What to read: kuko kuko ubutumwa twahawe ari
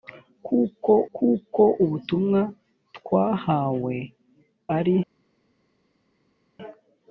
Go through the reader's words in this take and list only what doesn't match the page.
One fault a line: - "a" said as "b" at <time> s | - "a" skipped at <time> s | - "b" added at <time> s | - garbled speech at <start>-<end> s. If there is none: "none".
none